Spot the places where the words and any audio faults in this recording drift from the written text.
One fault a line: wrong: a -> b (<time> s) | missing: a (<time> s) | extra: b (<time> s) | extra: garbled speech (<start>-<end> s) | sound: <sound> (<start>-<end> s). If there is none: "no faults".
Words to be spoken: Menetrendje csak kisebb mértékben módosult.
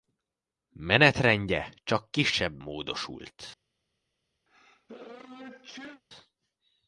missing: mértékben (2.6 s)
sound: sneeze (4.5-6.0 s)